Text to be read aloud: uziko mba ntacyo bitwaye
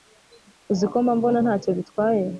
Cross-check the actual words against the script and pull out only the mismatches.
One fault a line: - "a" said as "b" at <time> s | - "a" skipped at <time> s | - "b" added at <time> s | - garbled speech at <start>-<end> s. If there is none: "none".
- "mbona" added at 1.2 s